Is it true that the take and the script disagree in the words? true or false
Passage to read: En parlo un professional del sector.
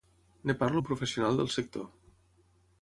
false